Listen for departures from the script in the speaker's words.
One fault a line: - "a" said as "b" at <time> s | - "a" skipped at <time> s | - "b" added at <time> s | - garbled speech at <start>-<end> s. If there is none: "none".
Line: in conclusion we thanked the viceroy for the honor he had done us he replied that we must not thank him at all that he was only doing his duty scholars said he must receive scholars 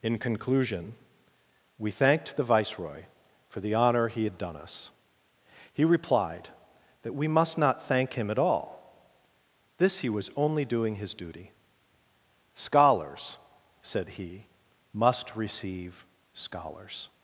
- "that" said as "this" at 9.8 s